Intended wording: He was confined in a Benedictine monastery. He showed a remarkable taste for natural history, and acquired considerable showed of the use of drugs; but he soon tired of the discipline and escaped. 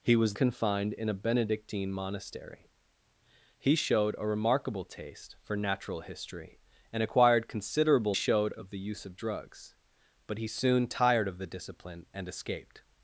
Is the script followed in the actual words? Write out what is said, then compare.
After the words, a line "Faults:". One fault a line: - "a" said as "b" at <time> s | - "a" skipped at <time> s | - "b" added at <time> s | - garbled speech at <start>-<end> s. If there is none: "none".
He was confined in a Benedictine monastery. He showed a remarkable taste for natural history, and acquired considerable showed of the use of drugs; but he soon tired of the discipline and escaped.
Faults:
none